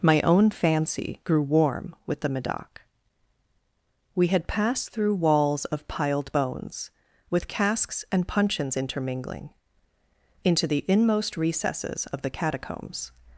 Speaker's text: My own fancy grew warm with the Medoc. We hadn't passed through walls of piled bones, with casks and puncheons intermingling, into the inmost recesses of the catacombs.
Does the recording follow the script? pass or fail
fail